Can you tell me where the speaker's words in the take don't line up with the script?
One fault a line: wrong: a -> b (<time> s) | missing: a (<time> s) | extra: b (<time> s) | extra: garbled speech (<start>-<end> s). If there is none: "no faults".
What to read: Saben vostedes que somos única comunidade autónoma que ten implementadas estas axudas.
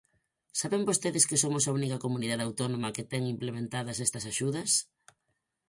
extra: a (1.6 s)